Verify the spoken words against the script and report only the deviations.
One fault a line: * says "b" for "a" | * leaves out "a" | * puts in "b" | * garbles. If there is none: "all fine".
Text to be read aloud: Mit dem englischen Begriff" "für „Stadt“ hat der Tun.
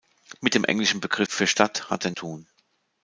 all fine